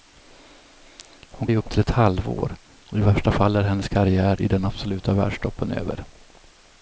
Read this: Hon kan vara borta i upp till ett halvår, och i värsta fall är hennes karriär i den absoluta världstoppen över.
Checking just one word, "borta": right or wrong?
wrong